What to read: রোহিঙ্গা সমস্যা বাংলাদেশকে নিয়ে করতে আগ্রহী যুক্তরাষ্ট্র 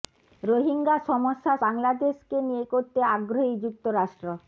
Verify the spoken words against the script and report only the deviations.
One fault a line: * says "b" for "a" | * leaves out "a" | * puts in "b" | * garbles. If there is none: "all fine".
all fine